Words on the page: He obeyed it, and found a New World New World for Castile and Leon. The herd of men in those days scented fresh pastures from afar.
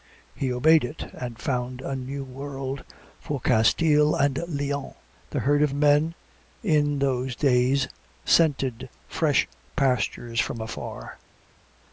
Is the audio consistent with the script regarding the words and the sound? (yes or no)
no